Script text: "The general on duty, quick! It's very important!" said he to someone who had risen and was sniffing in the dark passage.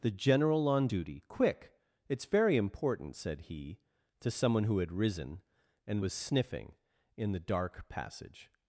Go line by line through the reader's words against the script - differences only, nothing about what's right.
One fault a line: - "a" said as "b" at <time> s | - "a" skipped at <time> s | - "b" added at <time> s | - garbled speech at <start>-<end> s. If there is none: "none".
none